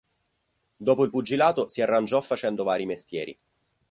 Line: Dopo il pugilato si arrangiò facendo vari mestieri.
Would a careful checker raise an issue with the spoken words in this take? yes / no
no